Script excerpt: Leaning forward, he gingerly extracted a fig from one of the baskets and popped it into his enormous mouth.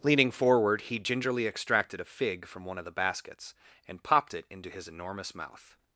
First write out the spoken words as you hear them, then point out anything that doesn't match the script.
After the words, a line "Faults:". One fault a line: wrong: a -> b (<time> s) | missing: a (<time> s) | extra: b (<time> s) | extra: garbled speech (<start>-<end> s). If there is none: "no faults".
Leaning forward, he gingerly extracted a fig from one of the baskets and popped it into his enormous mouth.
Faults:
no faults